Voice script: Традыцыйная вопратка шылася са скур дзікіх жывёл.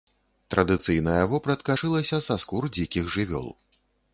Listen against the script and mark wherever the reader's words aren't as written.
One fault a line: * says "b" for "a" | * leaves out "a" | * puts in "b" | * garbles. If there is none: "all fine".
all fine